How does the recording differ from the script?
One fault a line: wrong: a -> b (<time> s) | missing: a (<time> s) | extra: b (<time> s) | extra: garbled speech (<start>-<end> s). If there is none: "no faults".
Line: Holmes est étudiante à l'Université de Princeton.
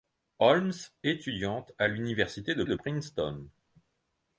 missing: est (0.7 s)
extra: de (2.7 s)